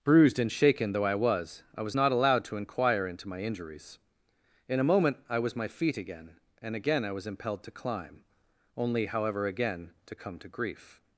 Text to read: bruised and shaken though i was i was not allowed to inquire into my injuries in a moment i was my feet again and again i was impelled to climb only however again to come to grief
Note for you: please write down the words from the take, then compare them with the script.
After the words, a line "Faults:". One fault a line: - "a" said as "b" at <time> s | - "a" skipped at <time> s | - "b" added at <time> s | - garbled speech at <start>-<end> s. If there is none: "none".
bruised and shaken though i was i was not allowed to inquire into my injuries in a moment i was my feet again and again i was impelled to climb only however again to come to grief
Faults:
none